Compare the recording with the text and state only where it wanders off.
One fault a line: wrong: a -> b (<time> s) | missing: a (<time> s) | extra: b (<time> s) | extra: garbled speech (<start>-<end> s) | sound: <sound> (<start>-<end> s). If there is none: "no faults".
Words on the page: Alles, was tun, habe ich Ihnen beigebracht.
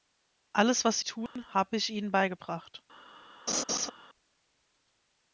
sound: dropout (1.3-1.4 s)
sound: laugh (3.5-3.9 s)